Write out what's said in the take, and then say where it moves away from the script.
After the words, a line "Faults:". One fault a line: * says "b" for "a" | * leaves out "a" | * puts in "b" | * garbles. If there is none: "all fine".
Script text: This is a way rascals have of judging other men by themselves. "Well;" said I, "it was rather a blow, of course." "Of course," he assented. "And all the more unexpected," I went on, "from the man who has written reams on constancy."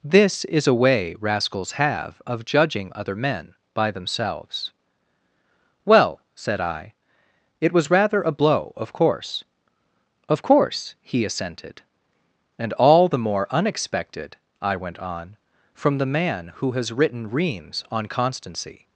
This is a way rascals have of judging other men by themselves. "Well;" said I, "it was rather a blow, of course." "Of course," he assented. "And all the more unexpected," I went on, "from the man who has written reams on constancy."
Faults:
all fine